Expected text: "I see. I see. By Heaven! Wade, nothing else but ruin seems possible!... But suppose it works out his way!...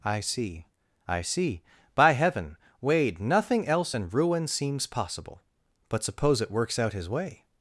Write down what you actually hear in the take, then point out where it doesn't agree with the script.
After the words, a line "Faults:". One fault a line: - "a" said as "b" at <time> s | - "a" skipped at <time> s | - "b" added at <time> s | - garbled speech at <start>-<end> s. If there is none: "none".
"I see. I see. By Heaven! Wade, nothing else and ruin seems possible!... But suppose it works out his way!...
Faults:
- "but" said as "and" at 3.9 s